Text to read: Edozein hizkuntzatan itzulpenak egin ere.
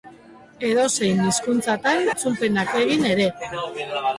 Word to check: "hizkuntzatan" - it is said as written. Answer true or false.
true